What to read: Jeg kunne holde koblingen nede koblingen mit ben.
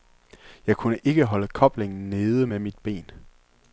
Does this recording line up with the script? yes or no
no